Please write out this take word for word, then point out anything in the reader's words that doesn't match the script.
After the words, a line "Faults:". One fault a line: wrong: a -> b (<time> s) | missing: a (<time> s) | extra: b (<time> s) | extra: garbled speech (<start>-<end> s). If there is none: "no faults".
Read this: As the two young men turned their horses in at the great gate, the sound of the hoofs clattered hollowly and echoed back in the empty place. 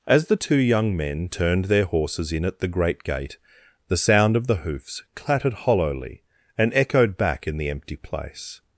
As the two young men turned their horses in at the great gate, the sound of the hoofs clattered hollowly and echoed back in the empty place.
Faults:
no faults